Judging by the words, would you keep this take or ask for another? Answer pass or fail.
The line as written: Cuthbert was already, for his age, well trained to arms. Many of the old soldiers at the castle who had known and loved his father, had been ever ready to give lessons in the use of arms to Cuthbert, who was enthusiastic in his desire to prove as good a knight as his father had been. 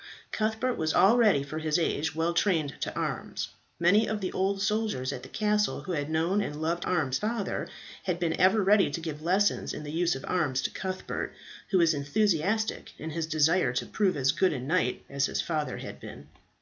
fail